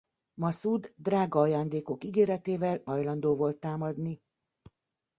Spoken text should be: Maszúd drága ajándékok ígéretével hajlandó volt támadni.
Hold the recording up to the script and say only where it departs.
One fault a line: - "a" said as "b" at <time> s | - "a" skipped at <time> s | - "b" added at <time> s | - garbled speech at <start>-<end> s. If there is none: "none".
none